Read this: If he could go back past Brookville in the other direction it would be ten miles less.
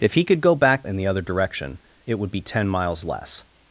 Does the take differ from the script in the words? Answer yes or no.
yes